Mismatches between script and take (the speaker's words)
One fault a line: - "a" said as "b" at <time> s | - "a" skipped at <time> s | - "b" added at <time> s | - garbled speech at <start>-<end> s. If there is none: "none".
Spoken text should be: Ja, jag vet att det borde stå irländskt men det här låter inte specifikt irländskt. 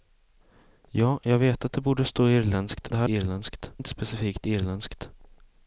- "men" skipped at 2.9 s
- "låter" said as "irländskt" at 3.1 s